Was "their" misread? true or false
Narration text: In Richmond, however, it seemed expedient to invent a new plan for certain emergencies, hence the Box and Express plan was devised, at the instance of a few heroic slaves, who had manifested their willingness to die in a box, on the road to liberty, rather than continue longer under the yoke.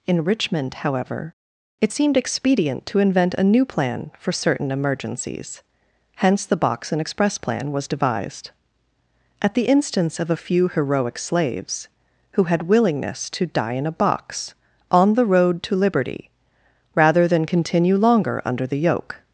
true